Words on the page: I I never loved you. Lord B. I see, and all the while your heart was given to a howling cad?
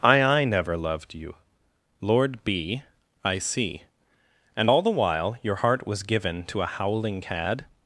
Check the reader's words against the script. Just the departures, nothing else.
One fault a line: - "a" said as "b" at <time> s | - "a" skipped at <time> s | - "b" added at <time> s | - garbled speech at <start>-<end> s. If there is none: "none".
none